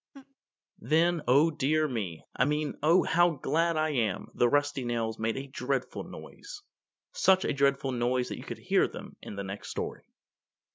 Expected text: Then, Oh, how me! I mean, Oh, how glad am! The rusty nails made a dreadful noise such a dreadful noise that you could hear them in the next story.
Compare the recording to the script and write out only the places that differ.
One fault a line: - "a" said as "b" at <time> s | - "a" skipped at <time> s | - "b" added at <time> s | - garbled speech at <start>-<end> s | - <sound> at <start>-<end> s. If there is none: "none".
- laugh at 0.1-0.4 s
- "how" said as "dear" at 1.5 s
- "I" added at 3.8 s